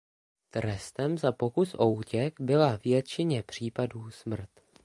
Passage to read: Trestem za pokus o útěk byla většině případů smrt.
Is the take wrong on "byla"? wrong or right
right